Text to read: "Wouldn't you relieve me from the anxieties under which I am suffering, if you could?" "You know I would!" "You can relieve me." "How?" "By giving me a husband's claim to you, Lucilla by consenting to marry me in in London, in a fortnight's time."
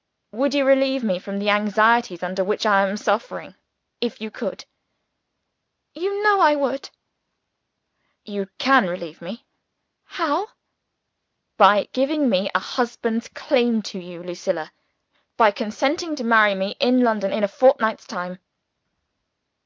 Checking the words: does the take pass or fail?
fail